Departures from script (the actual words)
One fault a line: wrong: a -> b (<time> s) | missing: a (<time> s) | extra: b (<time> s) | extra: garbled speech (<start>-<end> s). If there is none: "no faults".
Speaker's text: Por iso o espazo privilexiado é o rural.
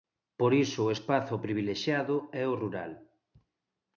no faults